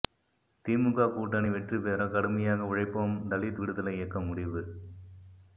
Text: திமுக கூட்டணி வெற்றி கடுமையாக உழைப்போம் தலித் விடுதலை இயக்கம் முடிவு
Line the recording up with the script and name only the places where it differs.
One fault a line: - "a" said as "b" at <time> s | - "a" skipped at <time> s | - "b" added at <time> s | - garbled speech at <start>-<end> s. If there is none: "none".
- "பெற" added at 1.8 s